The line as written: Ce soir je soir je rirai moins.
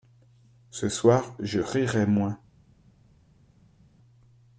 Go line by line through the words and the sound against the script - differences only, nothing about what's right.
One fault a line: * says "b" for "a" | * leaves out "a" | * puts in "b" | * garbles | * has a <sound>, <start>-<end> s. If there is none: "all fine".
* leaves out "soir je"